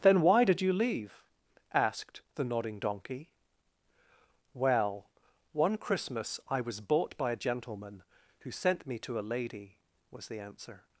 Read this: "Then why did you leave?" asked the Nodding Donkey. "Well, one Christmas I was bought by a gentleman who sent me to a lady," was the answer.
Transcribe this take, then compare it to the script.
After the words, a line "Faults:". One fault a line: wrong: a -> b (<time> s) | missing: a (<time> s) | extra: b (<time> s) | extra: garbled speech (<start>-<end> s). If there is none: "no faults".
"Then why did you leave?" asked the Nodding Donkey. "Well, one Christmas I was bought by a gentleman who sent me to a lady," was the answer.
Faults:
no faults